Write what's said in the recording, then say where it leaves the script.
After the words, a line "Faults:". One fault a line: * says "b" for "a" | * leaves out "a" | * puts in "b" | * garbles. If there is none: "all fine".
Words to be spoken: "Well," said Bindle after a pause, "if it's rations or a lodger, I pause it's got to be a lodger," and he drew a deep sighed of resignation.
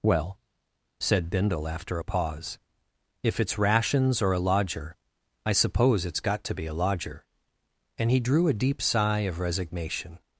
"Well," said Bindle after a pause, "if it's rations or a lodger, I suppose it's got to be a lodger," and he drew a deep sigh of resignation.
Faults:
* says "suppose" for "pause"
* says "sigh" for "sighed"